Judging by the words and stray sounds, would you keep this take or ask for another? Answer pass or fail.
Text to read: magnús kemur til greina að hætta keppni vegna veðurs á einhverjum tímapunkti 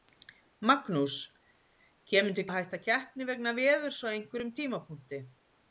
fail